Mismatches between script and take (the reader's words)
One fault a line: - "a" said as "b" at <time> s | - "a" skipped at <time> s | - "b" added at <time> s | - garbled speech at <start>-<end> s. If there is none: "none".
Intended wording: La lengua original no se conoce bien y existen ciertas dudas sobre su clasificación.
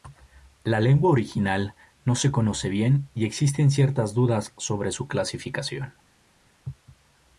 none